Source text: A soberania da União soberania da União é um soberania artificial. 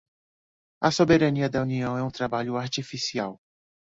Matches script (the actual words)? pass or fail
fail